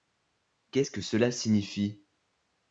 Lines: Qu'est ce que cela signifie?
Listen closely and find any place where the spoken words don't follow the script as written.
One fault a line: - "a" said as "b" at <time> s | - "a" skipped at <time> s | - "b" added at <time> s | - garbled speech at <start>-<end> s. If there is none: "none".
none